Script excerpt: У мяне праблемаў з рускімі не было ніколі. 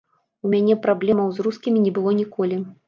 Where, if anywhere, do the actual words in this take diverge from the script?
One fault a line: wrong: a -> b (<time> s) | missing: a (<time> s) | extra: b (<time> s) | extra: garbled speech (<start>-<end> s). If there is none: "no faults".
no faults